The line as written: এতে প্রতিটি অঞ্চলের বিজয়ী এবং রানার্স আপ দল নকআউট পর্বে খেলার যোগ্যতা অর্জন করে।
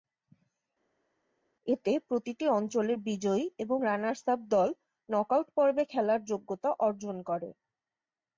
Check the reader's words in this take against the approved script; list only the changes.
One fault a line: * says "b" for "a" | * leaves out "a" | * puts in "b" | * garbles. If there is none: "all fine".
all fine